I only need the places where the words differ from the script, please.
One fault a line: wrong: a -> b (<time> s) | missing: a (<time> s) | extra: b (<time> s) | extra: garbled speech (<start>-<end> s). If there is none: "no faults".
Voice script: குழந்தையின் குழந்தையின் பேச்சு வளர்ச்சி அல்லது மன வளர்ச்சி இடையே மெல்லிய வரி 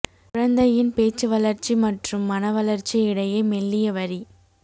missing: குழந்தையின் (0.9 s)
wrong: அல்லது -> மற்றும் (1.8 s)